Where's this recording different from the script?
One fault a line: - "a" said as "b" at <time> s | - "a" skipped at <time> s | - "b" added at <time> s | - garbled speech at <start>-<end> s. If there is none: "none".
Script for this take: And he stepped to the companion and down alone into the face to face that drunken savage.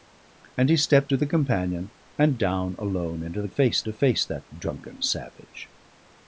none